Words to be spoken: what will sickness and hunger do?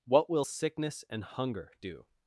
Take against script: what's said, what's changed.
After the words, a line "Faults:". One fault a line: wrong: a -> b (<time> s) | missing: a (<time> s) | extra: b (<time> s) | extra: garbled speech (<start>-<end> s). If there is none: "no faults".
what will sickness and hunger do?
Faults:
no faults